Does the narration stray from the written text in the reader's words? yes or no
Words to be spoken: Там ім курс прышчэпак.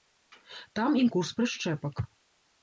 no